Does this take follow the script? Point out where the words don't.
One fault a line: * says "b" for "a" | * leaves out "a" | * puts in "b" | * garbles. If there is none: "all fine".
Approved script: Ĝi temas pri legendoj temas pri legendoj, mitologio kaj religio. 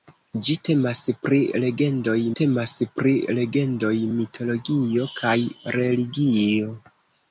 all fine